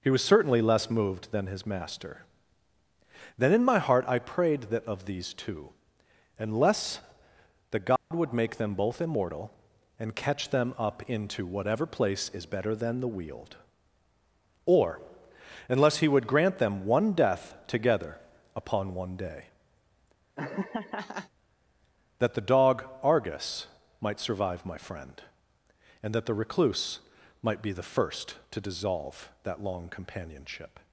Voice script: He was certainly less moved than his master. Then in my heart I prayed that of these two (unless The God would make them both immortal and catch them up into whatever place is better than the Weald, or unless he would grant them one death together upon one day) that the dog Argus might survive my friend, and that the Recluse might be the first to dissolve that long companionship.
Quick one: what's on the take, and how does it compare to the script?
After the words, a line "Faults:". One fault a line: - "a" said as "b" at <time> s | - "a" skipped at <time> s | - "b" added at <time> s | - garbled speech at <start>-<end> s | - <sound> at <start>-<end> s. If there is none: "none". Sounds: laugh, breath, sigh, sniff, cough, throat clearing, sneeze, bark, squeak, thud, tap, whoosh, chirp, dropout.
He was certainly less moved than his master. Then in my heart I prayed that of these two (unless The God would make them both immortal and catch them up into whatever place is better than the Weald, or unless he would grant them one death together upon one day) that the dog Argus might survive my friend, and that the Recluse might be the first to dissolve that long companionship.
Faults:
- dropout at 8.0-8.1 s
- laugh at 20.4-21.3 s